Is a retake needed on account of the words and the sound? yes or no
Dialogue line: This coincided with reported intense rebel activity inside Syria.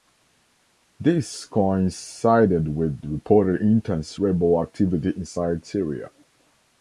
no